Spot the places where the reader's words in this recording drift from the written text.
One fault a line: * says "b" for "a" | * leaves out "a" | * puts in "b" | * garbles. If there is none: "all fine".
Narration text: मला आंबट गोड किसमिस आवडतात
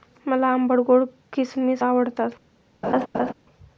all fine